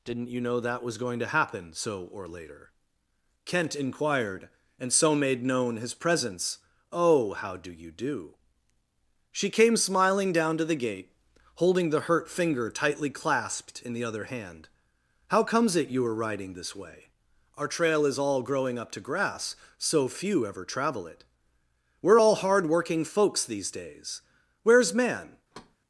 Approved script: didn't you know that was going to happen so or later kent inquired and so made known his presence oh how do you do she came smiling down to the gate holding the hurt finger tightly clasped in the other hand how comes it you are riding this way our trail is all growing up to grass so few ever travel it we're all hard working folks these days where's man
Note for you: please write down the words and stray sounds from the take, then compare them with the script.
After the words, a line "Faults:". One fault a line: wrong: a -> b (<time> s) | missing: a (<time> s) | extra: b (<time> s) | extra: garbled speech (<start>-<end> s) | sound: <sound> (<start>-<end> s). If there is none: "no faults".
didn't you know that was going to happen so or later kent inquired and so made known his presence oh how do you do she came smiling down to the gate holding the hurt finger tightly clasped in the other hand how comes it you are riding this way our trail is all growing up to grass so few ever travel it we're all hard working folks these days where's man
Faults:
sound: thud (25.5-25.8 s)